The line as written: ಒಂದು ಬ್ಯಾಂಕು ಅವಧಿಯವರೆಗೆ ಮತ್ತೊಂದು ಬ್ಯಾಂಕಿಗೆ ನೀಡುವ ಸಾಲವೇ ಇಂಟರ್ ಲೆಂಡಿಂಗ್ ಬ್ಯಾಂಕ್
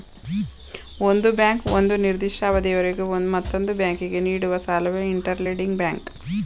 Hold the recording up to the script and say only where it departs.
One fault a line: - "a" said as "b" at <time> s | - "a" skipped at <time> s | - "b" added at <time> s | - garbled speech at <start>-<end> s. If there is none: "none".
- "ಒಂದು ನಿರ್ದಿಷ್ಟ" added at 1.7 s